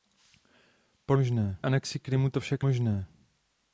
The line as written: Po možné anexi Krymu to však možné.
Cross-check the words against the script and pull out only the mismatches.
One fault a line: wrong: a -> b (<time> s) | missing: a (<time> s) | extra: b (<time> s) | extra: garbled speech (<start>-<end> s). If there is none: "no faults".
no faults